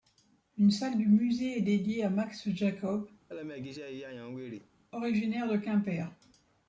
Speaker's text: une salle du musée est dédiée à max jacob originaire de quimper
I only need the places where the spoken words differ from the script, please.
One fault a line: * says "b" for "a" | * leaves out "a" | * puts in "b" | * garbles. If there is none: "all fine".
all fine